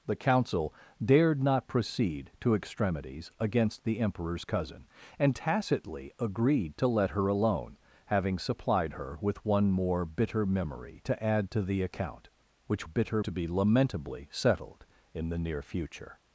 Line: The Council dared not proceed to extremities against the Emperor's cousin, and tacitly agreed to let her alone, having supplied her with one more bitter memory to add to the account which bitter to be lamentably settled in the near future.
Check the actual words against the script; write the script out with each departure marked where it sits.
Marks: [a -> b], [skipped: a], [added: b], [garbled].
The Council dared not proceed to extremities against the Emperor's cousin, and tacitly agreed to let her alone, having supplied her with one more bitter memory to add to the account which bitter to be lamentably settled in the near future.